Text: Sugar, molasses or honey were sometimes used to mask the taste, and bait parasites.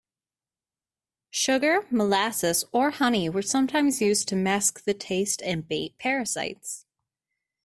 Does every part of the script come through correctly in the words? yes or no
yes